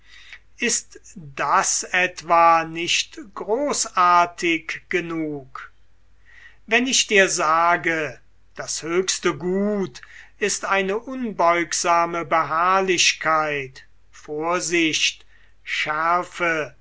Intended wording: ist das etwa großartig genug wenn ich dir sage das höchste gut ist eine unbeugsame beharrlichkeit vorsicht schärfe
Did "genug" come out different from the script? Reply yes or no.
no